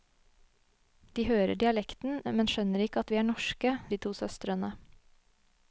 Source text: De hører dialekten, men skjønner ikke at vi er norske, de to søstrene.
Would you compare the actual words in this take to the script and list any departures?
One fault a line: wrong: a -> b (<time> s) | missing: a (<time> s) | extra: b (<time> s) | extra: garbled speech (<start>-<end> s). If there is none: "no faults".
no faults